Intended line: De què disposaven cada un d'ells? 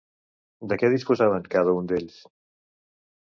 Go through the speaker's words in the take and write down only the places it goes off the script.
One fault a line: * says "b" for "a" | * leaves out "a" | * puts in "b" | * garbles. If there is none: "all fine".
all fine